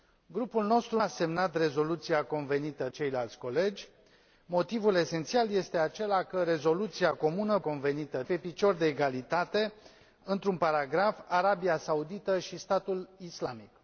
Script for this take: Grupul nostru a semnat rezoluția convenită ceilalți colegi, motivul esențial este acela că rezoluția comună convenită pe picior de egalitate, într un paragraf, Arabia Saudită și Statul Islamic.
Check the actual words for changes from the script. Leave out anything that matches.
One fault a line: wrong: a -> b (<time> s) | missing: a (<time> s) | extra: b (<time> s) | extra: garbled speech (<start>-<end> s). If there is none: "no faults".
no faults